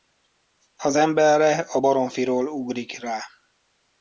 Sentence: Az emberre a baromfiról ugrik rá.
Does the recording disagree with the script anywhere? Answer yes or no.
no